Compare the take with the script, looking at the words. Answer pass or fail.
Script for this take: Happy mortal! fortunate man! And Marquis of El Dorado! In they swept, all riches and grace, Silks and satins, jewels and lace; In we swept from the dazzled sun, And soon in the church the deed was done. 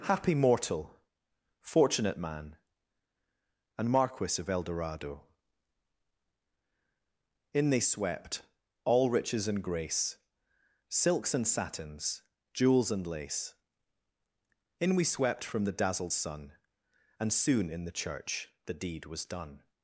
pass